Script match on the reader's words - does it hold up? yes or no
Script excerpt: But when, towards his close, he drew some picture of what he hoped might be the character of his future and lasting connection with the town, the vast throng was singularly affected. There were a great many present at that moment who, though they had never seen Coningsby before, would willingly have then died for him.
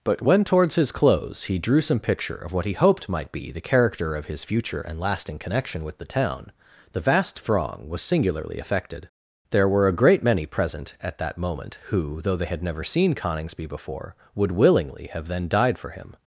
yes